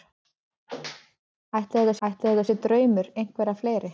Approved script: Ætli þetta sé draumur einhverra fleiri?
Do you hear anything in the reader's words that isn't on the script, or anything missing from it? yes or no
yes